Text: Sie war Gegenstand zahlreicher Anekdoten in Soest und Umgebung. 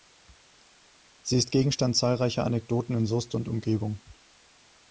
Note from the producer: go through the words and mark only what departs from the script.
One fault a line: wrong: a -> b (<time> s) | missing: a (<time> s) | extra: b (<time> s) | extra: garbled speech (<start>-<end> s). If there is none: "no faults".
wrong: war -> ist (1.4 s)